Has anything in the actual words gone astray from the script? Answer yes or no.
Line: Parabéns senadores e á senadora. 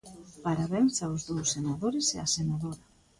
yes